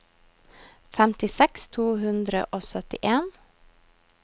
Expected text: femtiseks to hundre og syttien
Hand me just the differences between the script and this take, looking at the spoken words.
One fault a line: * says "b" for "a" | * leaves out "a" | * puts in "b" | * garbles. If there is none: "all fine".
all fine